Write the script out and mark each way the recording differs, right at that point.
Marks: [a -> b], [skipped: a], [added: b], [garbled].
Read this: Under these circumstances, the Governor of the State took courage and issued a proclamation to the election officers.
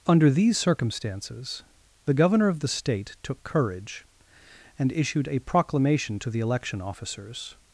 Under these circumstances, the Governor of the State took courage and issued a proclamation to the election officers.